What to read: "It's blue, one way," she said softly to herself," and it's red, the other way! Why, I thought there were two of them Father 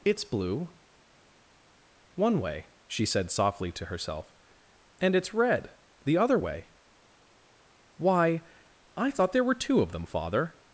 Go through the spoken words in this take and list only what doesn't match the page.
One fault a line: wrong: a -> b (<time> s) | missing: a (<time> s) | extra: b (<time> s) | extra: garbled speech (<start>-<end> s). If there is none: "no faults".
no faults